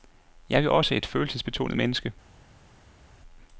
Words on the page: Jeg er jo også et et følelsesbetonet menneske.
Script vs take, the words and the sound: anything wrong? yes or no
yes